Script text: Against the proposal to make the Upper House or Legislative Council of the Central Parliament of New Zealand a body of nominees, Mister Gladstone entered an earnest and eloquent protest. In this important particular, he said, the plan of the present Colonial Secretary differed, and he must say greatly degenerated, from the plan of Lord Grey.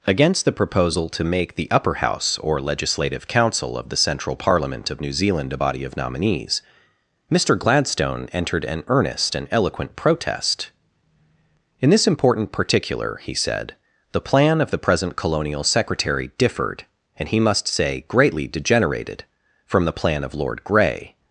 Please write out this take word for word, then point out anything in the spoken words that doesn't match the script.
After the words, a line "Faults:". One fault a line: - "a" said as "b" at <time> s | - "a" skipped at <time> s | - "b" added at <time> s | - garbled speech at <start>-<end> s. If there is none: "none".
Against the proposal to make the Upper House or Legislative Council of the Central Parliament of New Zealand a body of nominees, Mister Gladstone entered an earnest and eloquent protest. In this important particular, he said, the plan of the present Colonial Secretary differed, and he must say greatly degenerated, from the plan of Lord Grey.
Faults:
none